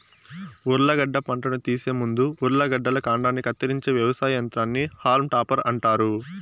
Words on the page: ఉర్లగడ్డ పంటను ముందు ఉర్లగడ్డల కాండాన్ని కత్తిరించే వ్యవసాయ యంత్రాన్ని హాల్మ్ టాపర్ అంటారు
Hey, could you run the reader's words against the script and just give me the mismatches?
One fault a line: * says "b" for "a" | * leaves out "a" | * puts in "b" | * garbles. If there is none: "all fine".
* puts in "తీసే"